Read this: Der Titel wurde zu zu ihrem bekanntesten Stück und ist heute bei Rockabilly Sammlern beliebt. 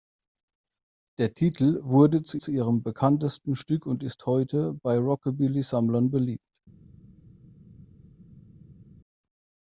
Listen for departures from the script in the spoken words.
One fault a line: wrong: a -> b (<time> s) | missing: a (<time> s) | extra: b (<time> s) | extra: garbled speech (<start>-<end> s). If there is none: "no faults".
no faults